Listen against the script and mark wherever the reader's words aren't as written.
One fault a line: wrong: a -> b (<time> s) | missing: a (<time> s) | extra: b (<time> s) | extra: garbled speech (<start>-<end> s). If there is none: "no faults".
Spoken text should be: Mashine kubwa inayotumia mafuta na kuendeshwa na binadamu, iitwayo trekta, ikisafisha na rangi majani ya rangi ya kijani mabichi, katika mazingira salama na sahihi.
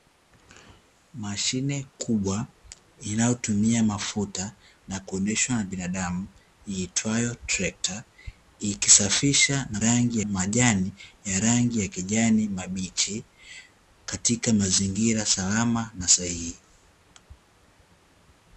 no faults